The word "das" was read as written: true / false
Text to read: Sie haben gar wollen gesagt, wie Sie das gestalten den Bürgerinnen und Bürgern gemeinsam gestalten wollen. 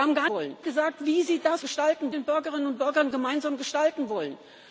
true